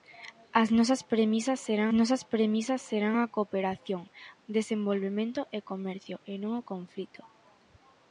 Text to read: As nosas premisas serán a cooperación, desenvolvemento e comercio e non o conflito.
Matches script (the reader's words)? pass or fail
fail